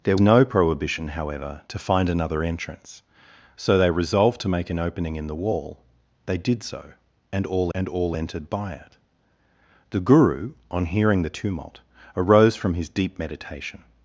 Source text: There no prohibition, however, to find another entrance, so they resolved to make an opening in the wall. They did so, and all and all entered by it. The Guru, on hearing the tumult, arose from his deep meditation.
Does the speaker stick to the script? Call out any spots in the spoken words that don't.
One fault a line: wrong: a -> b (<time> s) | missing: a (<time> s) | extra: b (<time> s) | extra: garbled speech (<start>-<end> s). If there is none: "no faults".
no faults